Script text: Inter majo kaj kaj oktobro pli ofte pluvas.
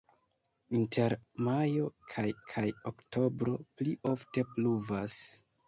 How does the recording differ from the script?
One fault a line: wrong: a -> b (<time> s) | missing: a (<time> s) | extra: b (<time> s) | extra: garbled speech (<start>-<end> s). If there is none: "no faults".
no faults